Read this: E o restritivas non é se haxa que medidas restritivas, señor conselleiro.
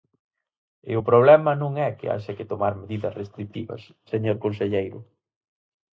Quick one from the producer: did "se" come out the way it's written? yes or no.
no